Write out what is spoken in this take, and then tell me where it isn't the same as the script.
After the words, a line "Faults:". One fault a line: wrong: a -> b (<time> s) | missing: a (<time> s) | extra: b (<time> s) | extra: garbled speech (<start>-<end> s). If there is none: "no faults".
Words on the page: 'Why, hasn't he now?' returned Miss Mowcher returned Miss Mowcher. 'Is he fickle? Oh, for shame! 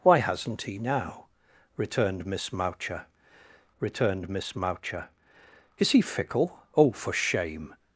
'Why, hasn't he now?' returned Miss Mowcher returned Miss Mowcher. 'Is he fickle? Oh, for shame!
Faults:
no faults